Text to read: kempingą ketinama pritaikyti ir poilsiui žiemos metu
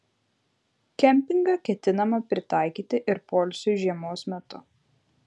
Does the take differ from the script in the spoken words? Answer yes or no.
no